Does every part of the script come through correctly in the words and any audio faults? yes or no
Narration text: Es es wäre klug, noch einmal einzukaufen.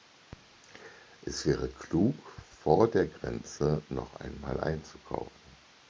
no